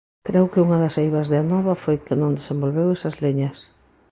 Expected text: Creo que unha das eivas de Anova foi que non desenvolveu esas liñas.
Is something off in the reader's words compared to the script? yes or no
no